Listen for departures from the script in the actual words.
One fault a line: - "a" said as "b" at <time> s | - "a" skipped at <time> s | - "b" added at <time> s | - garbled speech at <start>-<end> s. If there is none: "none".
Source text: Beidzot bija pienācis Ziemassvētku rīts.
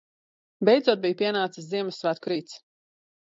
none